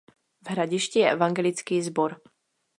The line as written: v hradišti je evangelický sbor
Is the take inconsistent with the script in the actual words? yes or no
no